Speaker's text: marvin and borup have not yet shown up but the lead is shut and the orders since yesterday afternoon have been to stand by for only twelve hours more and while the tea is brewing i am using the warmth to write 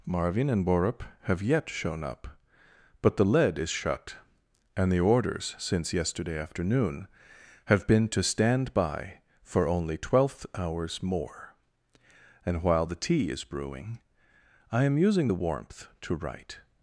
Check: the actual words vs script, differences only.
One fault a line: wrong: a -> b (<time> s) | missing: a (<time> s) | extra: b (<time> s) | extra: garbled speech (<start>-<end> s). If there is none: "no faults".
missing: not (1.4 s)
wrong: twelve -> twelfth (10.0 s)